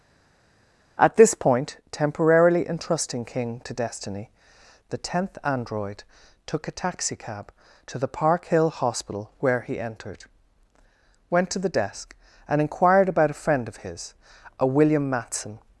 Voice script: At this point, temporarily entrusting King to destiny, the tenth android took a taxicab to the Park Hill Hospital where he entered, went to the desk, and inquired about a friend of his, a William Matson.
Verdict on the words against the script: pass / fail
pass